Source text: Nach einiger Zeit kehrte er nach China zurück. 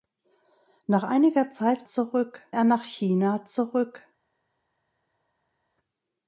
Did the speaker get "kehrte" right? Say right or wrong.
wrong